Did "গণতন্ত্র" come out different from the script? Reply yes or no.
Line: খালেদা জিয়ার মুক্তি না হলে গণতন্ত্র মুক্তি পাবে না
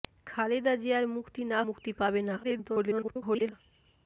yes